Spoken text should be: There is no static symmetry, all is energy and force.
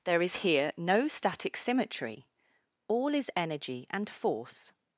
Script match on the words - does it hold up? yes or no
no